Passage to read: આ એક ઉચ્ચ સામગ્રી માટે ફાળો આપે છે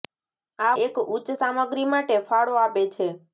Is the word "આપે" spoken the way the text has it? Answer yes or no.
yes